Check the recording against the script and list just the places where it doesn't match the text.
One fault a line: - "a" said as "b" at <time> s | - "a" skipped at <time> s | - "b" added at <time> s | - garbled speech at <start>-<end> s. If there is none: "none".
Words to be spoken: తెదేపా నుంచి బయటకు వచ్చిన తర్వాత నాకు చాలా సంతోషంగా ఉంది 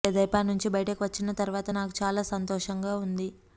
none